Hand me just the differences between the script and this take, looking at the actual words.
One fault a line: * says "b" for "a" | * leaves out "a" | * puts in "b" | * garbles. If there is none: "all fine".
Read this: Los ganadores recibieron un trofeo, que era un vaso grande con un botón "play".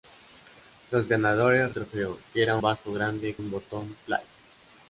* leaves out "recibieron un"
* leaves out "un"
* leaves out "con"